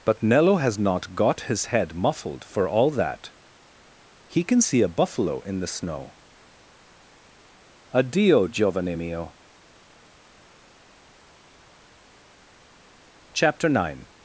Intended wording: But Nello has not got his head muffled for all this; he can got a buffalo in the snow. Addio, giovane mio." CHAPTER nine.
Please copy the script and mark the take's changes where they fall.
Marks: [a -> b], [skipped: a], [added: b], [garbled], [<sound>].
But Nello has not got his head muffled for all [this; -> that] he can [got -> see] a buffalo in the snow. Addio, giovane mio." CHAPTER nine.